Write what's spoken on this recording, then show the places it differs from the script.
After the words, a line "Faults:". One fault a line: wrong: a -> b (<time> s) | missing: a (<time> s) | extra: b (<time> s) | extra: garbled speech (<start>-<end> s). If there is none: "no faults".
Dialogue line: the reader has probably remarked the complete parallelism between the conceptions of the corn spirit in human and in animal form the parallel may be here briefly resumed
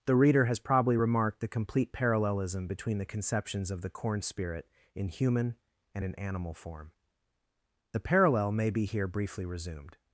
the reader has probably remarked the complete parallelism between the conceptions of the corn spirit in human and in animal form the parallel may be here briefly resumed
Faults:
no faults